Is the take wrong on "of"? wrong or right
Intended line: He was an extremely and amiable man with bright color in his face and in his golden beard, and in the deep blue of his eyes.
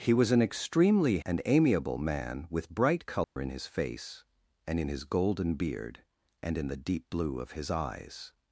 right